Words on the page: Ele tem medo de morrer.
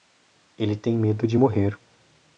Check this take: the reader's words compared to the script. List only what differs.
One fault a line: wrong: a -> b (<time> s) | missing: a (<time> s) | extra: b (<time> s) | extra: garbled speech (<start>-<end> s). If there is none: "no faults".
no faults